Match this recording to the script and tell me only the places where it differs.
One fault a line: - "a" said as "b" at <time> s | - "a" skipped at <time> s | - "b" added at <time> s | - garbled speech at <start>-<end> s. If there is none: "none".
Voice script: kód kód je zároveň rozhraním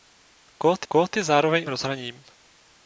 none